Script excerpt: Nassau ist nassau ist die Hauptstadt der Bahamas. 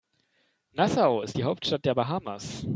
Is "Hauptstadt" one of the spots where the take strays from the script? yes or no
no